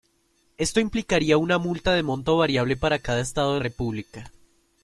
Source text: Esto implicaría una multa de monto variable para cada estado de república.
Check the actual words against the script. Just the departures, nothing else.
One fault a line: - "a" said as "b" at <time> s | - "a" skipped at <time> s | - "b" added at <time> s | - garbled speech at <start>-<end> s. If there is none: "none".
none